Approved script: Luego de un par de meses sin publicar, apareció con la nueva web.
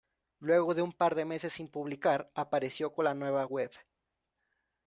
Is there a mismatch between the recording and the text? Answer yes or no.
no